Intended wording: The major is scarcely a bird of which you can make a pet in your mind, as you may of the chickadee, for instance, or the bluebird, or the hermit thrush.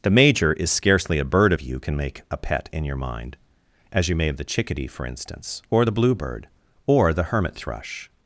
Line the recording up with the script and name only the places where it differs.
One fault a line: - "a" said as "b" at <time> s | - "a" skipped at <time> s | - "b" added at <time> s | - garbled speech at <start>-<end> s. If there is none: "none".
- "which" skipped at 1.6 s